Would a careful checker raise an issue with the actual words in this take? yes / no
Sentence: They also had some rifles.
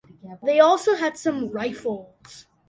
no